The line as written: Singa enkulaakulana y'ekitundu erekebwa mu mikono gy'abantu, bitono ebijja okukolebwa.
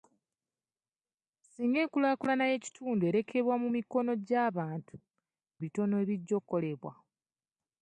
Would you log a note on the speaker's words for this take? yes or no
no